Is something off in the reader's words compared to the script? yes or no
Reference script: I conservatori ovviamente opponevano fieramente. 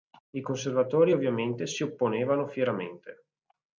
yes